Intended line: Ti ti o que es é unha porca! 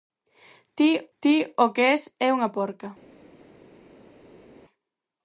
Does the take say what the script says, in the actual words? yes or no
yes